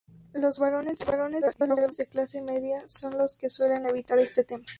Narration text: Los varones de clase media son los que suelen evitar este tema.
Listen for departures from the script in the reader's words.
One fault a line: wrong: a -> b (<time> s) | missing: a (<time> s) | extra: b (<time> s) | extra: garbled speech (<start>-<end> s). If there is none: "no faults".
extra: garbled speech (1.4-1.9 s)